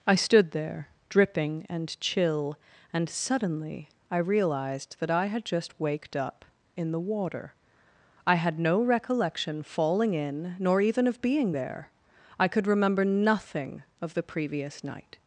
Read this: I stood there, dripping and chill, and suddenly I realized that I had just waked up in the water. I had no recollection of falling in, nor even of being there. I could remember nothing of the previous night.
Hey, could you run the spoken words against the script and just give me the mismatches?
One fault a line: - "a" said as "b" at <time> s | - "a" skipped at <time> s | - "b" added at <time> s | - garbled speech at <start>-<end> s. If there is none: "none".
- "of" skipped at 9.6 s